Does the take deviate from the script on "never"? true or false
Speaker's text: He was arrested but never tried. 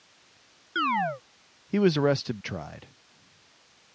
true